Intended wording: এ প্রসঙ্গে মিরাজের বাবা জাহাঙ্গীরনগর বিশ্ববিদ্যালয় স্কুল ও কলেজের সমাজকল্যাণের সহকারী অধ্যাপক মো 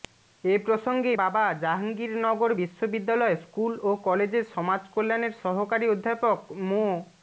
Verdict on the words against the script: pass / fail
fail